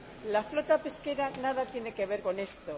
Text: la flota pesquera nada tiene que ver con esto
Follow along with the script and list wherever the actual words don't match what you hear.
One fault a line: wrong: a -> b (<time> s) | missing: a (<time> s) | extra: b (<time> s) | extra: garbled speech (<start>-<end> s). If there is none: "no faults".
no faults